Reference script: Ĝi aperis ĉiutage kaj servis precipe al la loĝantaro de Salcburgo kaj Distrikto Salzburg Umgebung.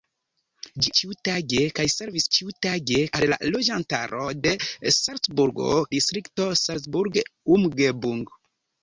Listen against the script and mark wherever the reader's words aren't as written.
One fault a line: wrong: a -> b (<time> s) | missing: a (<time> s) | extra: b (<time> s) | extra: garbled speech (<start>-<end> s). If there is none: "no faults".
missing: aperis (0.9 s)
wrong: precipe -> ĉiutage (2.4 s)
missing: kaj (5.7 s)